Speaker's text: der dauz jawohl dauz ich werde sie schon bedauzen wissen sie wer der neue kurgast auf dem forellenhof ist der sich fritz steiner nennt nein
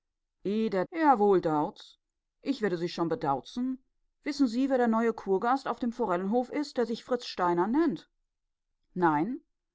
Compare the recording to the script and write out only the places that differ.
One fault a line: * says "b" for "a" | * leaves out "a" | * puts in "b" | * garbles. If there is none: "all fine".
* leaves out "dauz"